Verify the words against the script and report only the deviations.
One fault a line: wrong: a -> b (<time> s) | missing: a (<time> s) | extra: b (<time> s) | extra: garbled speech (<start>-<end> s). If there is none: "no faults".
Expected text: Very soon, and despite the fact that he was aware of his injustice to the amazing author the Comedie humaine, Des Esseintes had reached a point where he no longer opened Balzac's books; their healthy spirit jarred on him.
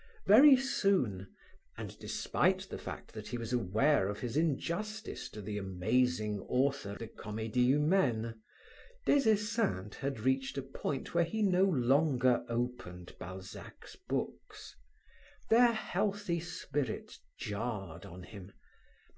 no faults